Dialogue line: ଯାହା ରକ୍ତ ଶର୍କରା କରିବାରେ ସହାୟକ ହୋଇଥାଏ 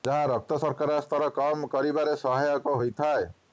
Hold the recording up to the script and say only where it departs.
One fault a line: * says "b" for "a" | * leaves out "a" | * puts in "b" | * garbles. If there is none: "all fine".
* puts in "ସ୍ତର କମ୍"